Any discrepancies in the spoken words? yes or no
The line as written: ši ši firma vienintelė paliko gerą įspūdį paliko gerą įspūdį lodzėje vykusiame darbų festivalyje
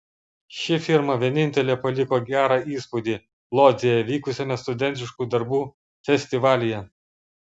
yes